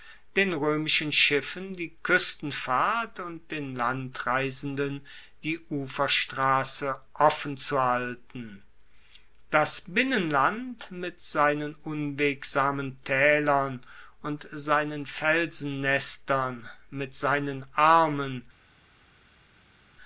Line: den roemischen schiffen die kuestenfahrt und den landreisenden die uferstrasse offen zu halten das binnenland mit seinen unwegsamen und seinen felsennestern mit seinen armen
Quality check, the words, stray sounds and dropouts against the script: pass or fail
fail